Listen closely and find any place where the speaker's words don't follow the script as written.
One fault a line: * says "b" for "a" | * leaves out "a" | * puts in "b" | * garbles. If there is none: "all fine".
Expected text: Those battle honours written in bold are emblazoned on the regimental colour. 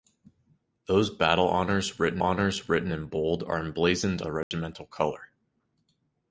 * puts in "honours written"
* leaves out "on"